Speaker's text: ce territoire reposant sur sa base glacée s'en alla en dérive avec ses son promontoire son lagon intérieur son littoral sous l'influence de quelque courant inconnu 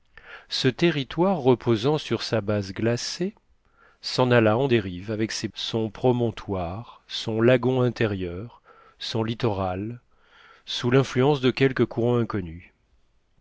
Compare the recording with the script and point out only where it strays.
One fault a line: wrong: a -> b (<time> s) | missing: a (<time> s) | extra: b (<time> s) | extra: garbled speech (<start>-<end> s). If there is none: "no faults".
no faults